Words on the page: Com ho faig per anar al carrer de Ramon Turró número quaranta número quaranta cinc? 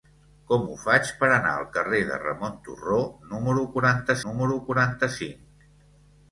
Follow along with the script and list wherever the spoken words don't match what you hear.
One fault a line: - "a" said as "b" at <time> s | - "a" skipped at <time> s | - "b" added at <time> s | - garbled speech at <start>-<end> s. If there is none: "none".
none